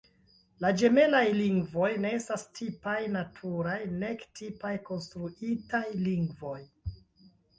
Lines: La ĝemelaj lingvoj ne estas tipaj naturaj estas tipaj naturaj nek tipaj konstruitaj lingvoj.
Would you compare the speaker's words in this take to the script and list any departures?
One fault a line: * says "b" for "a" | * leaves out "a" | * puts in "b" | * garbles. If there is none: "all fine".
* leaves out "estas tipaj naturaj"